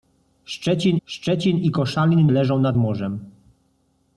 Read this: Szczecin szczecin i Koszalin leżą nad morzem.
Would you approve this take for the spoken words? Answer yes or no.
yes